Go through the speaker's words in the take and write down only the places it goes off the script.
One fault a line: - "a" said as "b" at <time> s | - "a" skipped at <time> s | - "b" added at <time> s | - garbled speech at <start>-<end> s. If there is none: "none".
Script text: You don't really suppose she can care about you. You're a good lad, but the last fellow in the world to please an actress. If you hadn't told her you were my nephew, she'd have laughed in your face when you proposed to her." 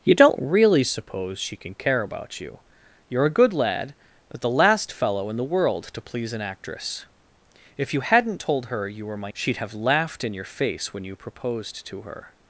- "nephew" skipped at 9.3 s